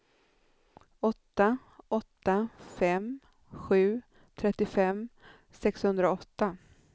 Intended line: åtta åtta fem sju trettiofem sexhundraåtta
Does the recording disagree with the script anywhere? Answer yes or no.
no